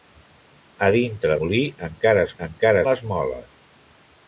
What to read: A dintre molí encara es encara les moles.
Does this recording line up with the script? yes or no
yes